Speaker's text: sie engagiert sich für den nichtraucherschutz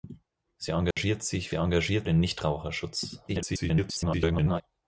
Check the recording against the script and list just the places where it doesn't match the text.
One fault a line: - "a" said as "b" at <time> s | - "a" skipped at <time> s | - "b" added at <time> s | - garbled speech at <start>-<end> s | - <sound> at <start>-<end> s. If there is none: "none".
- dropout at 0.9-1.0 s
- "für" said as "engagiert" at 1.5 s
- garbled speech at 3.3-4.6 s